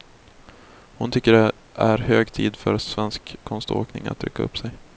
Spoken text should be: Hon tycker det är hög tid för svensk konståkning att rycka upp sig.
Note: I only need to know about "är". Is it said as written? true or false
true